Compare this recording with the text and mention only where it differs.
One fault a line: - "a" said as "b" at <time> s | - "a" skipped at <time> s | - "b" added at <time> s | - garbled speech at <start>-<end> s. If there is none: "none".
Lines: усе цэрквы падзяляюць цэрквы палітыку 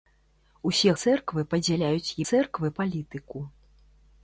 none